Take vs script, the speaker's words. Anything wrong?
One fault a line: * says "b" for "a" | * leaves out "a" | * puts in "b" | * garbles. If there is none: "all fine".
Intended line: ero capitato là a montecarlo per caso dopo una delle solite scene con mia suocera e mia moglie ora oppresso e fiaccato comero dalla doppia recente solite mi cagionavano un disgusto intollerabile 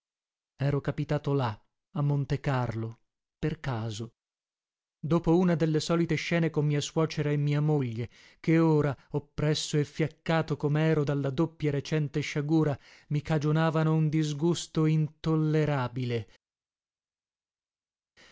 * puts in "che"
* says "sciagura" for "solite"